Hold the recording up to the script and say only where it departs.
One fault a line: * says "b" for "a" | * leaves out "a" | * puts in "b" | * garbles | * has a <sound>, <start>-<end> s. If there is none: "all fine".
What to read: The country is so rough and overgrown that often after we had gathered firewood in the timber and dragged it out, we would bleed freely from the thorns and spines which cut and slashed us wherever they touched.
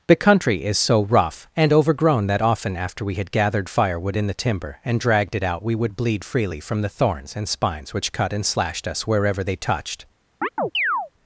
* has a chirp, 10.4-11.1 s